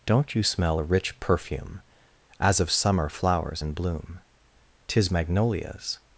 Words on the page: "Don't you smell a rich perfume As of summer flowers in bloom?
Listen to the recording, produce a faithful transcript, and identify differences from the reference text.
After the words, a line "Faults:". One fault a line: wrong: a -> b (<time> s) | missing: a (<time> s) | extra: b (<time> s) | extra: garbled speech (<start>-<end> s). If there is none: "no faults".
"Don't you smell a rich perfume As of summer flowers in bloom? 'Tis magnolias
Faults:
extra: Tis magnolias (4.9 s)